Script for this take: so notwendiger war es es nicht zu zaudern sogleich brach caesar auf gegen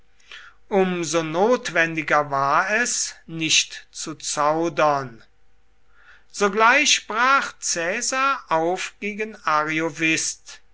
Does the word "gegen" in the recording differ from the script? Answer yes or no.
no